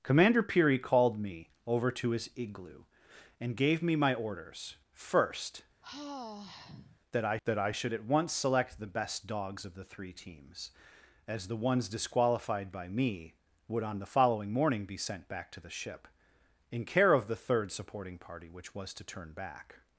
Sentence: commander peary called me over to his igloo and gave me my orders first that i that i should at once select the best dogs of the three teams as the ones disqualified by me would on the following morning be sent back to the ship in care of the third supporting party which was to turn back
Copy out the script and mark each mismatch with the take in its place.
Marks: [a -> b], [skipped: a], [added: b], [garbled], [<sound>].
commander peary called me over to his igloo and gave me my orders first [sigh] that i that i should at once select the best dogs of the three teams as the ones disqualified by me would on the following morning be sent back to the ship in care of the third supporting party which was to turn back